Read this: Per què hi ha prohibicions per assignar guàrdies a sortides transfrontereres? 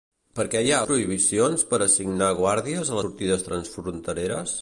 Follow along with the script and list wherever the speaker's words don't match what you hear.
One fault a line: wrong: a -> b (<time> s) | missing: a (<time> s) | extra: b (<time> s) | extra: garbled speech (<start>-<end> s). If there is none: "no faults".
no faults